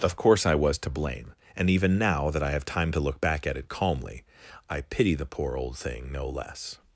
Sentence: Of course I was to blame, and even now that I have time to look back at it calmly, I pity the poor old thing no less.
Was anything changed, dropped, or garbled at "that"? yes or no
no